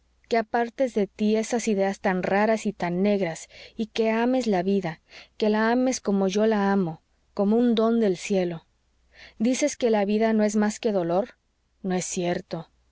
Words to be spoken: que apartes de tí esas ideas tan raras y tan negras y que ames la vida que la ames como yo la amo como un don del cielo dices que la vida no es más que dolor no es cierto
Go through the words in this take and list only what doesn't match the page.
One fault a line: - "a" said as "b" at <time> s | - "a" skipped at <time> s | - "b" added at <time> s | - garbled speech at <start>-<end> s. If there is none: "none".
none